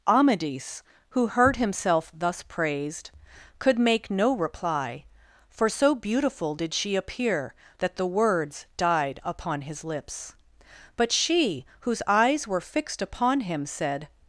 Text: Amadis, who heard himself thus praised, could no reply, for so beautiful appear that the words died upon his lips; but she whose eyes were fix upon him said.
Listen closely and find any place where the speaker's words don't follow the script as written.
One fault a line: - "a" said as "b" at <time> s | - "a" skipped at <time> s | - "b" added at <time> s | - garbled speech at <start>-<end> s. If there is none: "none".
- "make" added at 3.8 s
- "did she" added at 6.5 s
- "fix" said as "fixed" at 12.6 s